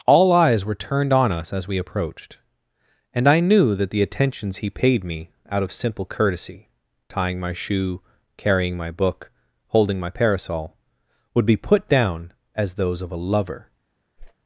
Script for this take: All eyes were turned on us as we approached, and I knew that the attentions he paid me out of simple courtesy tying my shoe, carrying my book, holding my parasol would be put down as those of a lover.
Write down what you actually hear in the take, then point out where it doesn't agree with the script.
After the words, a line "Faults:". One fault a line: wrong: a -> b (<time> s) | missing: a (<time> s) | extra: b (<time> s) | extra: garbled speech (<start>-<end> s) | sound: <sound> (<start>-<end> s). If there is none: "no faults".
All eyes were turned on us as we approached, and I knew that the attentions he paid me out of simple courtesy tying my shoe, carrying my book, holding my parasol would be put down as those of a lover.
Faults:
sound: whoosh (14.2-14.3 s)